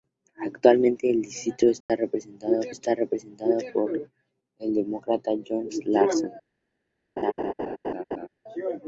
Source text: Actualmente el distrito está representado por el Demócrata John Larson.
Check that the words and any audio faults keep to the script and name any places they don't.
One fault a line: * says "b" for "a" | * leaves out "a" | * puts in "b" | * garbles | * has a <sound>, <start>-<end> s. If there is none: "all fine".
* has a dropout, 1.8-1.9 s
* puts in "está representado"
* has a laugh, 7.2-8.3 s